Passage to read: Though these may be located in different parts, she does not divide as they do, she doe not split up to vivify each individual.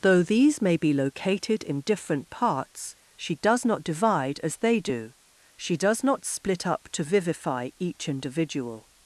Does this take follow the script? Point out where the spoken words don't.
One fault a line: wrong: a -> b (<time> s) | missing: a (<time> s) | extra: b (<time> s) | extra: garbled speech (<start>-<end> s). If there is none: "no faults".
wrong: doe -> does (5.8 s)